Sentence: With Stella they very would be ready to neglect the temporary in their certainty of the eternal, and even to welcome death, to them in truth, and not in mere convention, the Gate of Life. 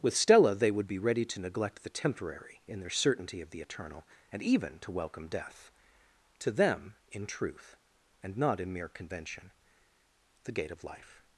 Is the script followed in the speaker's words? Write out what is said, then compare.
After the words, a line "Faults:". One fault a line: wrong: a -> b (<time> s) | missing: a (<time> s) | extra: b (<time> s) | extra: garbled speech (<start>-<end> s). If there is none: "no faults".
With Stella they would be ready to neglect the temporary in their certainty of the eternal, and even to welcome death, to them in truth, and not in mere convention, the Gate of Life.
Faults:
missing: very (0.7 s)